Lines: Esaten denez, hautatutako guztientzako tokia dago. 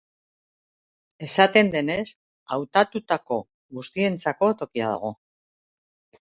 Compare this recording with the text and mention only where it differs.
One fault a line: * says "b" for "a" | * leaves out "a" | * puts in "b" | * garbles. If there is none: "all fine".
all fine